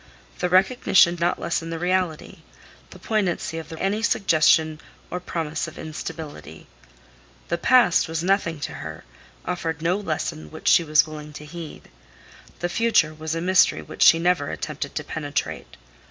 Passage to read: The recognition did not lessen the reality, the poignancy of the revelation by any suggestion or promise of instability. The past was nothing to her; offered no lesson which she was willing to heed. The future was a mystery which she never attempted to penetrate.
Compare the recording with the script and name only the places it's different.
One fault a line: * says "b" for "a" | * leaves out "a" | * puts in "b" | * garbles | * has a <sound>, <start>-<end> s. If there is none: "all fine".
* leaves out "did"
* leaves out "revelation by"